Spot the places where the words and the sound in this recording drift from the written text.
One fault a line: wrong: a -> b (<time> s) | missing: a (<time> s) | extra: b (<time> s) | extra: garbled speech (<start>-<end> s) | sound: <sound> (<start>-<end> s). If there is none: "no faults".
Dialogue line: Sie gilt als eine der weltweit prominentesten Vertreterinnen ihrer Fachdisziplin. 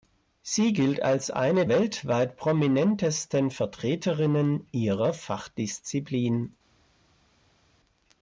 missing: der (1.7 s)